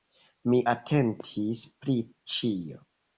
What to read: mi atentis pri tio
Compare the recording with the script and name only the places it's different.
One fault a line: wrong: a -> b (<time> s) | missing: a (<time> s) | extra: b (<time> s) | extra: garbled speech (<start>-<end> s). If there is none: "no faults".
wrong: tio -> ĉio (2.3 s)